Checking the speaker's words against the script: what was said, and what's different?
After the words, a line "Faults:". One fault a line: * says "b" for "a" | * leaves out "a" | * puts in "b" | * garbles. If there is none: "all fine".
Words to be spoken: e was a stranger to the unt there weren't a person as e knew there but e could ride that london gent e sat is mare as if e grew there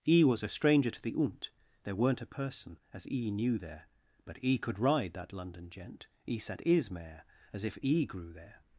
e was a stranger to the unt there weren't a person as e knew there but e could ride that london gent e sat is mare as if e grew there
Faults:
all fine